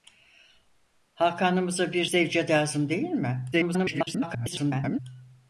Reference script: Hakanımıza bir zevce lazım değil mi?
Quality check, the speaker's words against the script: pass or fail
fail